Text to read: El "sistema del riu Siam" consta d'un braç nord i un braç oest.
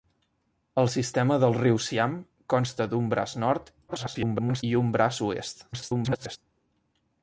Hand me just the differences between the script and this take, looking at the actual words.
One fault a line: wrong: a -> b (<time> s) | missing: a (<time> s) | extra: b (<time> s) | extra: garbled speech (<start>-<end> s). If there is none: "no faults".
extra: garbled speech (3.9-4.6 s)
extra: garbled speech (5.7-6.4 s)